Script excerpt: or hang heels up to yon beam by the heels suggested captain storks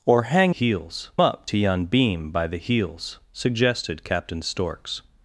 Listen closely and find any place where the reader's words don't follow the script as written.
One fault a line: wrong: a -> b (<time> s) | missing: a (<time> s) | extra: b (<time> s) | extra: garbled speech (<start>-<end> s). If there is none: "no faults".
no faults